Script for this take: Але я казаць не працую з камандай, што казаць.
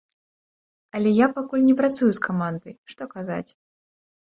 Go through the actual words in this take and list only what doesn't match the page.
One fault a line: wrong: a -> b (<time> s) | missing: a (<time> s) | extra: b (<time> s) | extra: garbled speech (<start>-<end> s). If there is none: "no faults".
wrong: казаць -> пакуль (1.4 s)